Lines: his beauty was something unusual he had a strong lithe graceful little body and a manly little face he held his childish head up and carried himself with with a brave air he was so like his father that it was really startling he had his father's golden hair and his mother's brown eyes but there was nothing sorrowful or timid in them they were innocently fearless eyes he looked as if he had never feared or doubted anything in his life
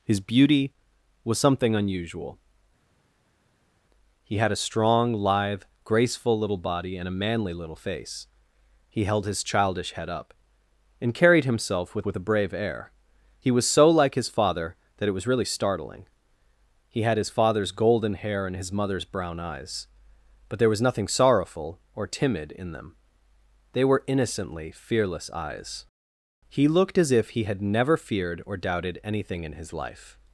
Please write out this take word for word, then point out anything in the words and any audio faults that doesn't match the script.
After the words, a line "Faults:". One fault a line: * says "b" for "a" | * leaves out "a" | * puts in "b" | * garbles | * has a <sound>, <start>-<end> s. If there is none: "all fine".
his beauty was something unusual he had a strong lithe graceful little body and a manly little face he held his childish head up and carried himself with with a brave air he was so like his father that it was really startling he had his father's golden hair and his mother's brown eyes but there was nothing sorrowful or timid in them they were innocently fearless eyes he looked as if he had never feared or doubted anything in his life
Faults:
all fine